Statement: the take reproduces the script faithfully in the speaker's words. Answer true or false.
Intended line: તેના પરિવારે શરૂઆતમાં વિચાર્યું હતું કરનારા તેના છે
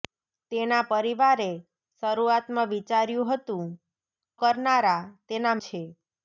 true